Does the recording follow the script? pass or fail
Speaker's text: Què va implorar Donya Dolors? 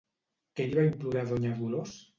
fail